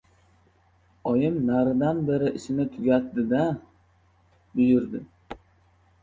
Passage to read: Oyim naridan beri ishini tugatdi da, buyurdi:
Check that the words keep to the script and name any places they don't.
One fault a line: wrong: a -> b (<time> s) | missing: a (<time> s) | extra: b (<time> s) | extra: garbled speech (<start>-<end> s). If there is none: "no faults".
no faults